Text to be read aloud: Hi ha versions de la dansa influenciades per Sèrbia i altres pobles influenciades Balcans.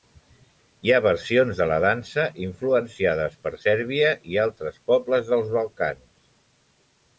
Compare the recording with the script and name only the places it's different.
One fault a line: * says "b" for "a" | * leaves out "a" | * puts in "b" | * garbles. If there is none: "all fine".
* says "dels" for "influenciades"